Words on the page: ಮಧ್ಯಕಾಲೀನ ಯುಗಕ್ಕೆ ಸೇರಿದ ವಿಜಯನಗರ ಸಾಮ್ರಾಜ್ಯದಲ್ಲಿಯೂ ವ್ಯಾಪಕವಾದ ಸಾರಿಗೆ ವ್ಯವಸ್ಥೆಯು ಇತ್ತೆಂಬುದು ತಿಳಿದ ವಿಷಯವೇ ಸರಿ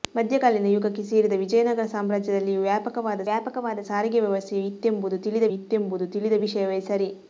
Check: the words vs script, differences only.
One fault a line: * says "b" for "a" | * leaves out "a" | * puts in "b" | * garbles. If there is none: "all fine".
* puts in "ವ್ಯಾಪಕವಾದ"
* puts in "ಇತ್ತೆಂಬುದು ತಿಳಿದ"